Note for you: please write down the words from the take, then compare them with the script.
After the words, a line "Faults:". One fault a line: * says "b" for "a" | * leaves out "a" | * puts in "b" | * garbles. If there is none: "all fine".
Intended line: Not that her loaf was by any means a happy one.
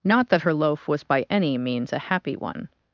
Not that her loaf was by any means a happy one.
Faults:
all fine